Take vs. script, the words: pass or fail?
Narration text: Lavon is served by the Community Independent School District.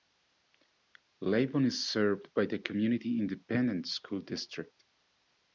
pass